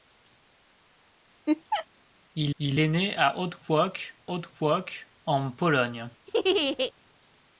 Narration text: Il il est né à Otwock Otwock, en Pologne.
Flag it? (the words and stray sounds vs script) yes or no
yes